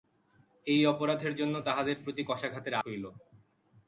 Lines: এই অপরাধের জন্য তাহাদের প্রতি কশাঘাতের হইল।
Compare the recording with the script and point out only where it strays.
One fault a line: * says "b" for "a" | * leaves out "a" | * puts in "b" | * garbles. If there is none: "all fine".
all fine